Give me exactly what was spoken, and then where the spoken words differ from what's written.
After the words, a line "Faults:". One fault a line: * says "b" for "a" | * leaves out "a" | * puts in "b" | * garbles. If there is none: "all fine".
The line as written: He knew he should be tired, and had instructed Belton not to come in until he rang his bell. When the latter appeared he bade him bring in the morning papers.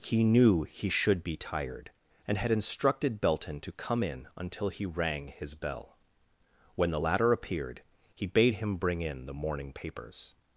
He knew he should be tired, and had instructed Belton to come in until he rang his bell. When the latter appeared he bade him bring in the morning papers.
Faults:
* leaves out "not"